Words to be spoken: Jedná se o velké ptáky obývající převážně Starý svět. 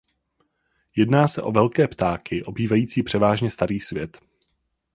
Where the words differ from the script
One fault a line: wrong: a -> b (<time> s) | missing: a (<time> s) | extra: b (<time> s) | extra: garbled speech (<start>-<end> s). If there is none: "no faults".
no faults